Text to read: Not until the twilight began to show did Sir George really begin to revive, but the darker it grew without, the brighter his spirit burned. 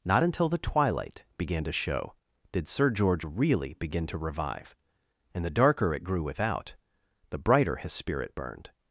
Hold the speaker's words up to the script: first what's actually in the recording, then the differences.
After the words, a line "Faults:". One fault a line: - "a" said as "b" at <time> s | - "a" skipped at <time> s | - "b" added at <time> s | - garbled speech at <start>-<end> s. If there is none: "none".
Not until the twilight began to show did Sir George really begin to revive, and the darker it grew without, the brighter his spirit burned.
Faults:
- "but" said as "and" at 5.3 s